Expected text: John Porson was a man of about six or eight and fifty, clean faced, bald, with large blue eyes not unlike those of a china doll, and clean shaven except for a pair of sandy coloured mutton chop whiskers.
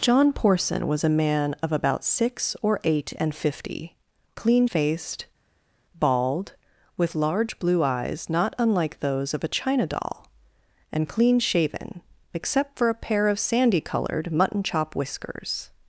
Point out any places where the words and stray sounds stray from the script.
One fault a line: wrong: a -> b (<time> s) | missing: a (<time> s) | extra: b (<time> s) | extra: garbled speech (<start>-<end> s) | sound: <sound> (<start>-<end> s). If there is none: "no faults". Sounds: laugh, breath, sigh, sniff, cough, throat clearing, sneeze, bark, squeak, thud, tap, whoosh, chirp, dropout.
no faults